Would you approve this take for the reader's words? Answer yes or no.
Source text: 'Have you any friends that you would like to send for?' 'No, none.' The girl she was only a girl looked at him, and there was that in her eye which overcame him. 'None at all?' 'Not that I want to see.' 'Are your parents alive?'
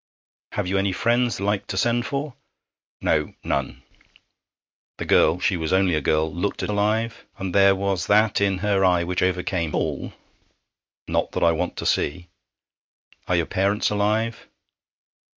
no